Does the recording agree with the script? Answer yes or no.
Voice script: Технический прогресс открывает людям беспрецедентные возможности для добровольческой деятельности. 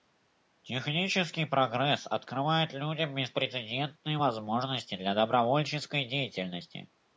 yes